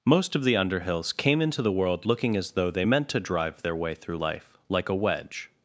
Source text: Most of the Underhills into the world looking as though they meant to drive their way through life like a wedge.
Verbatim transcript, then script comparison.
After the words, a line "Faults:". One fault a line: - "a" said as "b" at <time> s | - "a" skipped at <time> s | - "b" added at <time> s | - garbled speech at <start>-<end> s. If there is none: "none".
Most of the Underhills came into the world looking as though they meant to drive their way through life like a wedge.
Faults:
- "came" added at 1.1 s